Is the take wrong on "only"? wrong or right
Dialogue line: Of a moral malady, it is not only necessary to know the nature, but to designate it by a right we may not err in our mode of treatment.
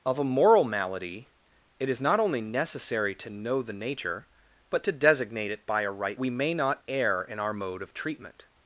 right